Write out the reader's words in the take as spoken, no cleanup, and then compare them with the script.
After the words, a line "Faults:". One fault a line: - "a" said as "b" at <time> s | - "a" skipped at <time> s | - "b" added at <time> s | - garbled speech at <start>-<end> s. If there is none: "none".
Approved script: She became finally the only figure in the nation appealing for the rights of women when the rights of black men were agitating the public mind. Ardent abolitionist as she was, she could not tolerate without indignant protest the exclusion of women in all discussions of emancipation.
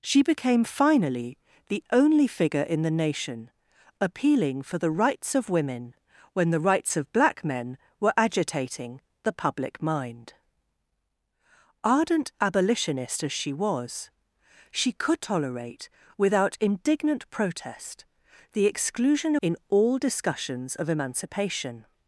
She became finally the only figure in the nation appealing for the rights of women when the rights of black men were agitating the public mind. Ardent abolitionist as she was, she could tolerate without indignant protest the exclusion in all discussions of emancipation.
Faults:
- "not" skipped at 15.2 s
- "of women" skipped at 19.4 s